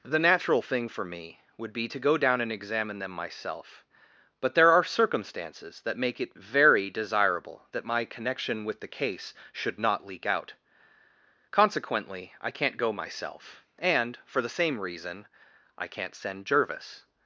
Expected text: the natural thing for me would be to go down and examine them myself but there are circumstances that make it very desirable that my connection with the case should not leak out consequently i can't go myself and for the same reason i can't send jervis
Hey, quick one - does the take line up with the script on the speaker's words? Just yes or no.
yes